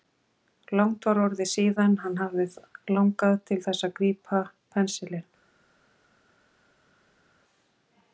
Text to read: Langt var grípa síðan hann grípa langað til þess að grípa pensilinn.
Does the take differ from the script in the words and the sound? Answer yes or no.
yes